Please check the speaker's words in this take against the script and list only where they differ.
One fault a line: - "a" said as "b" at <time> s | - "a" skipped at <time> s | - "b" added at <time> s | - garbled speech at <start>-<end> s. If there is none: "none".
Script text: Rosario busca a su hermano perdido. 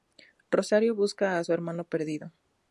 none